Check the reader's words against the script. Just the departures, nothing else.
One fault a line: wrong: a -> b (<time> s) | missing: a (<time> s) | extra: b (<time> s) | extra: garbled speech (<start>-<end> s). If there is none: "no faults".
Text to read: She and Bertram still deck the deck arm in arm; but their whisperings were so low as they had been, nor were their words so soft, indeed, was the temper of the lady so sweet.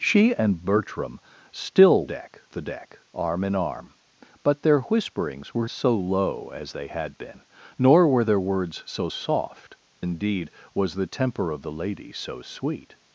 no faults